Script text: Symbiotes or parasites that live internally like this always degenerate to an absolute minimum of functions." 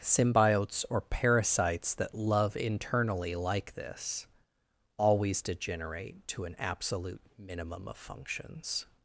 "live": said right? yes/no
no